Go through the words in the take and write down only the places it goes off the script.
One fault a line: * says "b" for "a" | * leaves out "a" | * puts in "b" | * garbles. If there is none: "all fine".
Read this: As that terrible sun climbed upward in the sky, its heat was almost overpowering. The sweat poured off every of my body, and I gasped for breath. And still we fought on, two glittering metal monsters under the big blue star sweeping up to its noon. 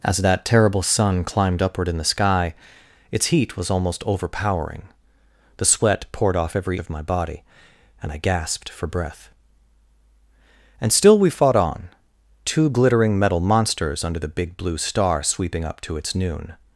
all fine